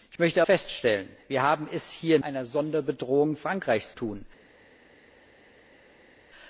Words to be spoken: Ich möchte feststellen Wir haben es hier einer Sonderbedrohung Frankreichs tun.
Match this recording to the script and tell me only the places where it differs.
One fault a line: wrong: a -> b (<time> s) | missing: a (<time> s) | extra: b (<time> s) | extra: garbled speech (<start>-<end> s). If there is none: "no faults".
no faults